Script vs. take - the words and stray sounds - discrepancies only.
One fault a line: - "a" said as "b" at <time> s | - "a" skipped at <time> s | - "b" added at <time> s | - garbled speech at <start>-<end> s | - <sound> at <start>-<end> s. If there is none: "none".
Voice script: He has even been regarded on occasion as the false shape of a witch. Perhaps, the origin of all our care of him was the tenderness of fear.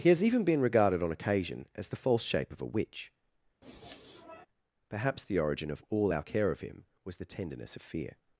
- sniff at 3.6-4.5 s